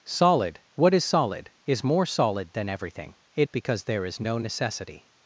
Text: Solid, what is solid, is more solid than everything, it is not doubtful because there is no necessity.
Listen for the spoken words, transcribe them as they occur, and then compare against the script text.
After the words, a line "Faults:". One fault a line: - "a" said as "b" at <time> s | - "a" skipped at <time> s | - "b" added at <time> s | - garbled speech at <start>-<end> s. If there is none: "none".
Solid, what is solid, is more solid than everything, it because there is no necessity.
Faults:
- "is not doubtful" skipped at 3.5 s